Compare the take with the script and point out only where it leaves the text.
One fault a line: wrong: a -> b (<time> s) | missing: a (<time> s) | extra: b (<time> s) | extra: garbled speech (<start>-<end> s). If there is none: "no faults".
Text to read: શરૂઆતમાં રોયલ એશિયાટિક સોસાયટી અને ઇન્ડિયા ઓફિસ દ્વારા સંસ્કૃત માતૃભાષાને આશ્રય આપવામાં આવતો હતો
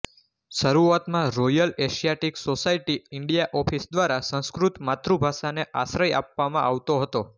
missing: અને (3.0 s)